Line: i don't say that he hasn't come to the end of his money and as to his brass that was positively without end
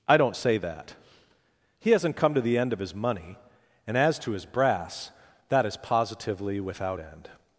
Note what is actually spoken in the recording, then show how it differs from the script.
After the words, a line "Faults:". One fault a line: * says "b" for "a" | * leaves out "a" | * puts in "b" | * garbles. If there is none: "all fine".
i don't say that he hasn't come to the end of his money and as to his brass that is positively without end
Faults:
* says "is" for "was"